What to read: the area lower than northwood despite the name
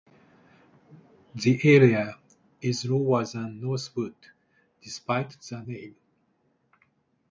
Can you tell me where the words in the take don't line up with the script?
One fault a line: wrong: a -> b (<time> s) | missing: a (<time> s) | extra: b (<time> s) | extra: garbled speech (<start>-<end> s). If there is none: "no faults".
extra: is (2.6 s)